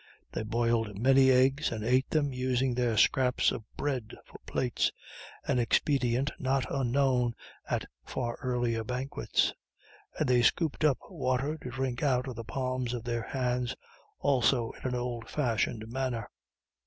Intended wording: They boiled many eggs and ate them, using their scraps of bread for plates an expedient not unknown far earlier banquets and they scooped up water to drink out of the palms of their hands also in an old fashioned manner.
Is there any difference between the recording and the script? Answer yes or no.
yes